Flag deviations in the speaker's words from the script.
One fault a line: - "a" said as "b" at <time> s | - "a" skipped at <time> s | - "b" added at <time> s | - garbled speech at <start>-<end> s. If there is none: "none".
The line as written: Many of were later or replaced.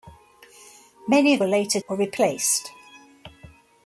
none